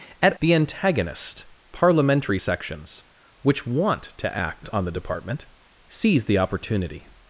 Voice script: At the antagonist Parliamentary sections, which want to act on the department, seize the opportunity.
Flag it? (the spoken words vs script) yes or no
no